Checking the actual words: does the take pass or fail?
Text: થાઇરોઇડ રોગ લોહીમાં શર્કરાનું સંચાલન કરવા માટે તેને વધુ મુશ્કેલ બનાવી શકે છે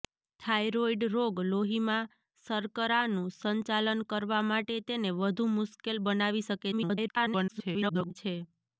fail